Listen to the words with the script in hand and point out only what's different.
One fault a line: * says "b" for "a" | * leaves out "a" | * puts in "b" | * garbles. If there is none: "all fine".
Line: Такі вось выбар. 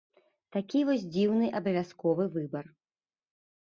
* puts in "дзіўны абавязковы"